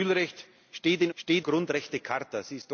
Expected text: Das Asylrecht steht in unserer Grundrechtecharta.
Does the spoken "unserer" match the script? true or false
false